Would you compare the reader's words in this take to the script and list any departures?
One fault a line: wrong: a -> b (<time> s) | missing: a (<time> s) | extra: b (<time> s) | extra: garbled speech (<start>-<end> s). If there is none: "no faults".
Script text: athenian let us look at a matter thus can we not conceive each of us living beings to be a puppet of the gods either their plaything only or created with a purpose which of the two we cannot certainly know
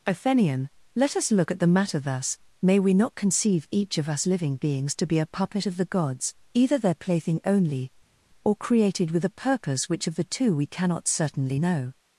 wrong: a -> the (1.6 s)
wrong: can -> may (2.6 s)